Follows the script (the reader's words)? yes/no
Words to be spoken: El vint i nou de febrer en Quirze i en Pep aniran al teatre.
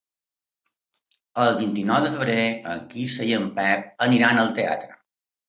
yes